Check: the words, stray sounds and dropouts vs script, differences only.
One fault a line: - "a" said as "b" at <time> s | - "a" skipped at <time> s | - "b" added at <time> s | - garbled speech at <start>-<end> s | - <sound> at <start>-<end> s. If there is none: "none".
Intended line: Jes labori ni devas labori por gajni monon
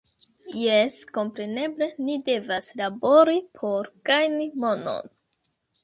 - "labori" said as "kompreneble" at 1.2 s